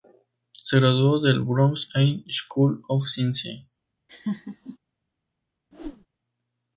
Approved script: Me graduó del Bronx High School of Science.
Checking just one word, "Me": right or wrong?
wrong